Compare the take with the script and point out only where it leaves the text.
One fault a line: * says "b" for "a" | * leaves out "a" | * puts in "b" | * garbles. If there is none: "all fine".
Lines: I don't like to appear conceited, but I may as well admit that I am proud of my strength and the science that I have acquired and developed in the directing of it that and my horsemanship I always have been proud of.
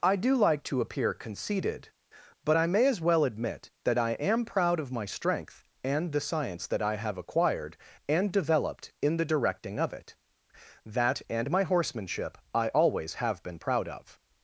* says "do" for "don't"